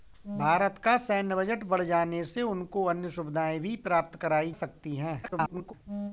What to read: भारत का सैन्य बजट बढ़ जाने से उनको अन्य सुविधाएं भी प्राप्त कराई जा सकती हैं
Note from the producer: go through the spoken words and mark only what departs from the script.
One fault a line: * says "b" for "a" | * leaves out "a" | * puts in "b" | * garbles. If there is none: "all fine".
* leaves out "जा"
* garbles